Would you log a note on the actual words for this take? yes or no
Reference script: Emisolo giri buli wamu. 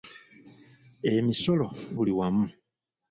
yes